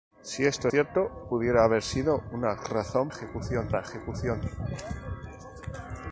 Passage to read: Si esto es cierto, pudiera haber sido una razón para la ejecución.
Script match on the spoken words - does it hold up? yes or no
no